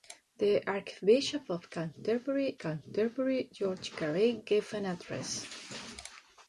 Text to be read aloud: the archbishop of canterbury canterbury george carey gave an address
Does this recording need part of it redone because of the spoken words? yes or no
no